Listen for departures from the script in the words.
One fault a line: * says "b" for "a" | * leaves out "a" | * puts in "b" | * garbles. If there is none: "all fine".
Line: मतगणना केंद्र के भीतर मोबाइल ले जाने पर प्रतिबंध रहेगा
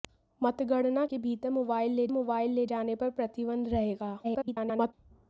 * leaves out "केंद्र"
* puts in "मोबाइल ले"
* garbles